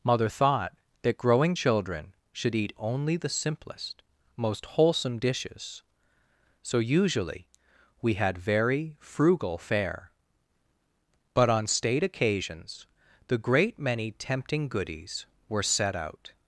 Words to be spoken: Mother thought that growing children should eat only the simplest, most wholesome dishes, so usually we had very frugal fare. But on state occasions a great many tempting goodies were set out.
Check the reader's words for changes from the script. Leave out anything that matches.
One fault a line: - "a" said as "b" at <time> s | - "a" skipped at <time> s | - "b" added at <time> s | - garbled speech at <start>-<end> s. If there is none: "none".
- "a" said as "the" at 13.3 s